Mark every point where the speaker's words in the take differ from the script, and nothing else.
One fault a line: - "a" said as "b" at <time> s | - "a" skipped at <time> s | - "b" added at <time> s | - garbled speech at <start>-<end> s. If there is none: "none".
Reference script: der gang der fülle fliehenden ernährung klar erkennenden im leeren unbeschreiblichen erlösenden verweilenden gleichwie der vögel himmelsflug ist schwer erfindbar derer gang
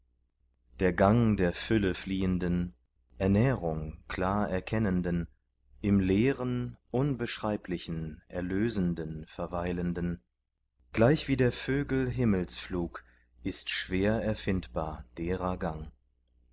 none